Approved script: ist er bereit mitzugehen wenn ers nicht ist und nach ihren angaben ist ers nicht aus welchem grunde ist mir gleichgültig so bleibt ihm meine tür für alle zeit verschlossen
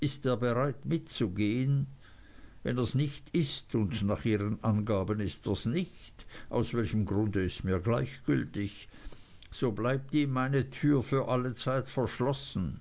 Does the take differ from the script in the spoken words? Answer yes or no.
no